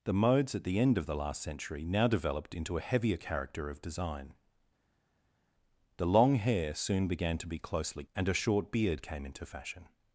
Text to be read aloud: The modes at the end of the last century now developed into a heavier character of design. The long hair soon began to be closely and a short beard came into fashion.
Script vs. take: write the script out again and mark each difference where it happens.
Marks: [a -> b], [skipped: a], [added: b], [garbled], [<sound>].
The modes at the end of the last century now developed into a heavier character of design. The long hair soon began to be closely and a short beard came into fashion.